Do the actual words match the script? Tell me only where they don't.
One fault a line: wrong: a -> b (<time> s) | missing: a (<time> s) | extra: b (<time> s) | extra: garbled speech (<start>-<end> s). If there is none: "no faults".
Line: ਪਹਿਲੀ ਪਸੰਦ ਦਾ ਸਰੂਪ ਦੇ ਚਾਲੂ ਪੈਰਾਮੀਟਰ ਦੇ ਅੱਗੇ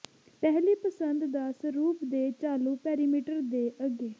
no faults